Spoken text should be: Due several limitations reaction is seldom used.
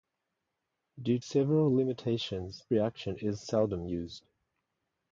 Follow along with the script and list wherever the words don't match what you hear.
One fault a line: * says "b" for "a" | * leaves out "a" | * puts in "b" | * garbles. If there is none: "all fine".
all fine